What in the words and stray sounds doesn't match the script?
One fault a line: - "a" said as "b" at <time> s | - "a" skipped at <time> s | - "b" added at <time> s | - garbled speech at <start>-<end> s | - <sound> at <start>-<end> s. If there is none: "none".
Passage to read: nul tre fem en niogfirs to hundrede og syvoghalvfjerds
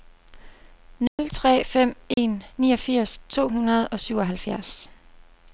- dropout at 1.1-1.2 s
- dropout at 2.1-2.2 s